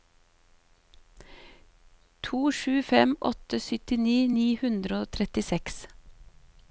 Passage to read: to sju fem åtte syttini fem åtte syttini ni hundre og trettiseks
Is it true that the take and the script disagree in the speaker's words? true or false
true